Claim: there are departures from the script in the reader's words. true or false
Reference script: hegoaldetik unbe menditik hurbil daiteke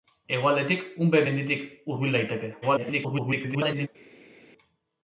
true